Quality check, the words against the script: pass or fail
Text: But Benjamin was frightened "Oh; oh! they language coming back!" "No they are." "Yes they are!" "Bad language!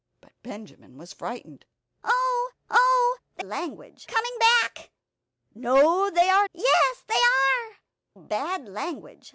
pass